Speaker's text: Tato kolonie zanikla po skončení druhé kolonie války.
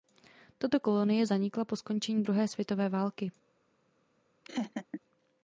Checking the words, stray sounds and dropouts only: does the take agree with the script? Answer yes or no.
no